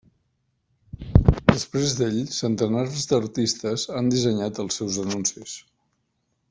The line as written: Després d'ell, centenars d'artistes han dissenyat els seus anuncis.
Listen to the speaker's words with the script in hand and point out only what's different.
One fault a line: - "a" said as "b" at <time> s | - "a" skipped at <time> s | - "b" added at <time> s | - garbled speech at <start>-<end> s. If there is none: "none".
none